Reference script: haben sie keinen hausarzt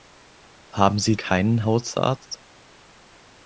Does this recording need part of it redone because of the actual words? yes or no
no